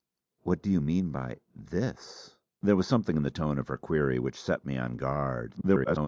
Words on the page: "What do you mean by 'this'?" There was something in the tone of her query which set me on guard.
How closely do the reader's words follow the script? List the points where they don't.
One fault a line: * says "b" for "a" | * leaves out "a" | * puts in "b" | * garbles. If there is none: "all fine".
* garbles